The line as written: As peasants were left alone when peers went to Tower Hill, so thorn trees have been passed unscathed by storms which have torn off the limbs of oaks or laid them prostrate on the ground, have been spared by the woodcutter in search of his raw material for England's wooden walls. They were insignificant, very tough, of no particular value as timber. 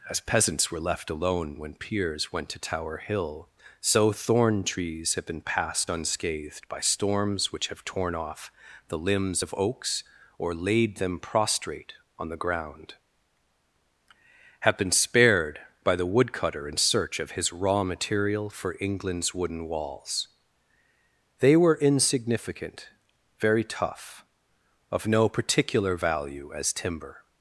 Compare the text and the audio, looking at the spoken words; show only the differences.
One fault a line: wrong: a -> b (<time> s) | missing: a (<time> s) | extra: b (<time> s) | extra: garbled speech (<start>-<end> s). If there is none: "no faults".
no faults